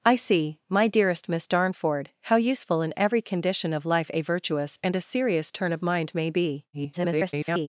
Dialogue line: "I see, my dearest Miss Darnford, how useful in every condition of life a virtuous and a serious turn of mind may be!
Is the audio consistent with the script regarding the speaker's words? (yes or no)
no